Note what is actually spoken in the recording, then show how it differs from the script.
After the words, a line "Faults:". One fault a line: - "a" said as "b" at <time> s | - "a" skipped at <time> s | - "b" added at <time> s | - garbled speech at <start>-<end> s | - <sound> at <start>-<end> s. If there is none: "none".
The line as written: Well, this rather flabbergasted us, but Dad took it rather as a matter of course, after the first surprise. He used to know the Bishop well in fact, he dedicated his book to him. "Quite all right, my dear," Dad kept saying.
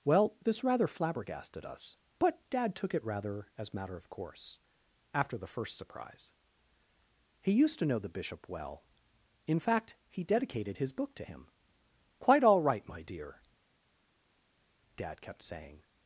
Well, this rather flabbergasted us, but Dad took it rather as matter of course, after the first surprise. He used to know the Bishop well in fact, he dedicated his book to him. "Quite all right, my dear," Dad kept saying.
Faults:
- "a" skipped at 3.7 s